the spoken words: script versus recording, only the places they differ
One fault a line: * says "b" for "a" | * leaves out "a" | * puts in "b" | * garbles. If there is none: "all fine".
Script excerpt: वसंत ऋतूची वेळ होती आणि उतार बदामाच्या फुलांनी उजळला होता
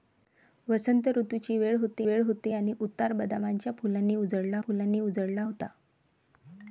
* puts in "वेळ होती"
* puts in "फुलांनी उजळला"